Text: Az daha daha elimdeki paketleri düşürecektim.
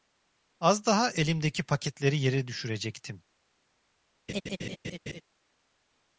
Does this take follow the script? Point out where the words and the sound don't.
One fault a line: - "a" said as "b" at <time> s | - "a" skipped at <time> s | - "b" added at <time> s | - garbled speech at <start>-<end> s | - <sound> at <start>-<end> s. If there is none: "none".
- "daha" skipped at 1.1 s
- "yere" added at 2.2 s
- laugh at 4.3-5.2 s